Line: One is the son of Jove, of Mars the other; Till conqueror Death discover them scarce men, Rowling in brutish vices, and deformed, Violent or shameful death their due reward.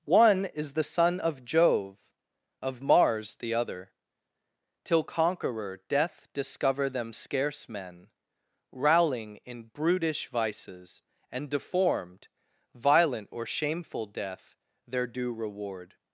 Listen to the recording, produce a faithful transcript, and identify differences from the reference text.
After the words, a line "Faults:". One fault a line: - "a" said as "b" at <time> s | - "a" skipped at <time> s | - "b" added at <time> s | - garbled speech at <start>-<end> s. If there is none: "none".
One is the son of Jove, of Mars the other; Till conqueror Death discover them scarce men, Rowling in brutish vices, and deformed, Violent or shameful death their due reward.
Faults:
none